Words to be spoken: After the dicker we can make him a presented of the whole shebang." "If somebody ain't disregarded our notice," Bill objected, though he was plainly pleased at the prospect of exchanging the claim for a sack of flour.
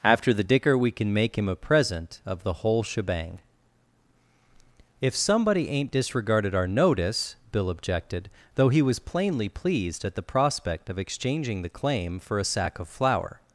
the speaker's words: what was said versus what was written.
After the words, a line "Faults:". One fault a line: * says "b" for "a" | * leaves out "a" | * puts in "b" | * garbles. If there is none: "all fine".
After the dicker we can make him a present of the whole shebang." "If somebody ain't disregarded our notice," Bill objected, though he was plainly pleased at the prospect of exchanging the claim for a sack of flour.
Faults:
* says "present" for "presented"